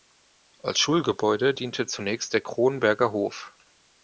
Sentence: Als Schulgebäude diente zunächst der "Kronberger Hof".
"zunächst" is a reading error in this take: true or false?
false